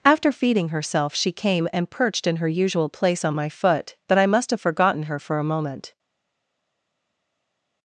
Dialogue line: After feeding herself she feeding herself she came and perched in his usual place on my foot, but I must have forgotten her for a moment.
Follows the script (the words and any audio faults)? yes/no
no